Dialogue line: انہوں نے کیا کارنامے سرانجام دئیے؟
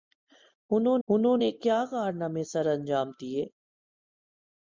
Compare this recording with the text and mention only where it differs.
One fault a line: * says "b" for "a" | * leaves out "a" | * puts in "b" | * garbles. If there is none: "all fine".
* puts in "انہوں"